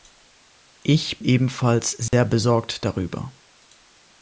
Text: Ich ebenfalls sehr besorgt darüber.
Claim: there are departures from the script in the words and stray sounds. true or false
true